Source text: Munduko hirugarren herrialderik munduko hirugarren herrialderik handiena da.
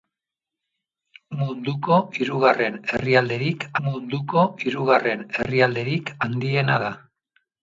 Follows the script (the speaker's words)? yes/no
yes